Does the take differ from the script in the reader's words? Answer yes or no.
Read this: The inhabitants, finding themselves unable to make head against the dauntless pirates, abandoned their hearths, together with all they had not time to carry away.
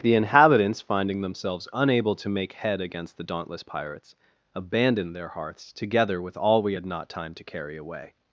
yes